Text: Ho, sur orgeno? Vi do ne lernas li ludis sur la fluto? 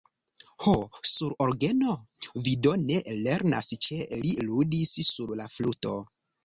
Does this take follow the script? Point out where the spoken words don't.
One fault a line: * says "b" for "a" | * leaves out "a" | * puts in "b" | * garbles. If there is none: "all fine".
* puts in "ĉe"